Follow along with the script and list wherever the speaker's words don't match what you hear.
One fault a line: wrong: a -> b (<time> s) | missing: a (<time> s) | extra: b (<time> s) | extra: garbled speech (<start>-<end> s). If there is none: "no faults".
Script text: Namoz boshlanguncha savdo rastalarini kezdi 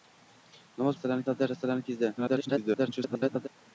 wrong: boshlanguncha -> rastalarini (0.9 s)
extra: garbled speech (2.2-3.5 s)